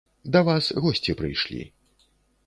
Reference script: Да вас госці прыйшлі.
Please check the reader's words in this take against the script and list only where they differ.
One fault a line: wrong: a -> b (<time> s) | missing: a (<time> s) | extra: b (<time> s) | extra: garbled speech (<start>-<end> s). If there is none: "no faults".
no faults